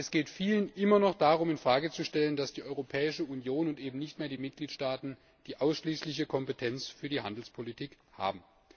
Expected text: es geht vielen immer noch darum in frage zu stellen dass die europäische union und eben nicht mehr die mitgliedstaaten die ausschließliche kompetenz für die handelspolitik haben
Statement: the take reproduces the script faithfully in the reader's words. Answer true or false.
true